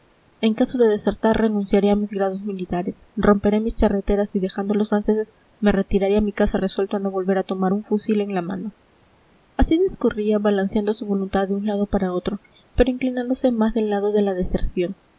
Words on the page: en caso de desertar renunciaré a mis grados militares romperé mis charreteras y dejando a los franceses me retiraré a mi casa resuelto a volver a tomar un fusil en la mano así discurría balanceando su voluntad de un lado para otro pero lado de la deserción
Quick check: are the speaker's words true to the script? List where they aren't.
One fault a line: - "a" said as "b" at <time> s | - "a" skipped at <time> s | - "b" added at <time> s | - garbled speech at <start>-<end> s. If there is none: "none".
- "no" added at 7.0 s
- "inclinándose más del" added at 12.9 s